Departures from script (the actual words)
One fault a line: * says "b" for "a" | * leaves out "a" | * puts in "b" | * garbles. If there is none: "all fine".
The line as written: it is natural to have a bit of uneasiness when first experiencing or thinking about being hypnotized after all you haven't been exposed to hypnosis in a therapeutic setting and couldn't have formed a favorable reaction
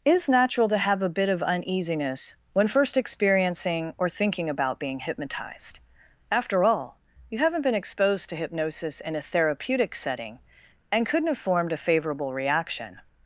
* leaves out "it"